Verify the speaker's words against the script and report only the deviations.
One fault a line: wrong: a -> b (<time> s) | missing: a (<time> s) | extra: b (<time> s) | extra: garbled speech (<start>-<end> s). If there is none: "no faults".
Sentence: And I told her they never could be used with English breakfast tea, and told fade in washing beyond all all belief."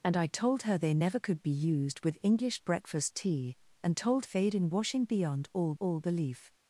no faults